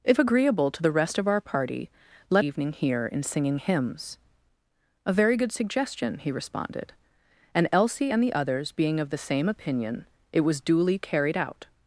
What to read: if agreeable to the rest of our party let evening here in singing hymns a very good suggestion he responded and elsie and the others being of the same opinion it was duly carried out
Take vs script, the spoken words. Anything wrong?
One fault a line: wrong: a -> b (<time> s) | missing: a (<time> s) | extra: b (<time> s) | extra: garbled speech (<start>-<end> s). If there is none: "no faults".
no faults